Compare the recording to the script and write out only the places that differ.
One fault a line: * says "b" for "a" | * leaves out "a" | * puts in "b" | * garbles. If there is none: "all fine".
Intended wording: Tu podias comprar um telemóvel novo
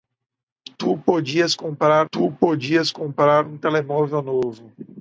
* puts in "tu podias comprar"